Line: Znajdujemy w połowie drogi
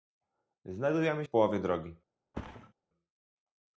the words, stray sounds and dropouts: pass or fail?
fail